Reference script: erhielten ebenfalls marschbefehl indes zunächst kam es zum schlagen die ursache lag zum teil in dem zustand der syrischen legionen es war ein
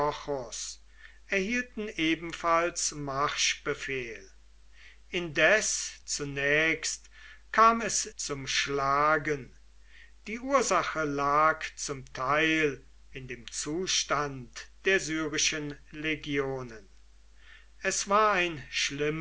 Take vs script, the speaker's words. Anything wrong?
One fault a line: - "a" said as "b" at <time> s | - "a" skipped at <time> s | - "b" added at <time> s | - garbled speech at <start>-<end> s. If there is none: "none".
none